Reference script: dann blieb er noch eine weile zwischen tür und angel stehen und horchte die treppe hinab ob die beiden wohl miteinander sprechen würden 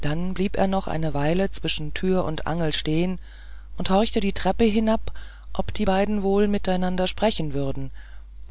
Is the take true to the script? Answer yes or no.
yes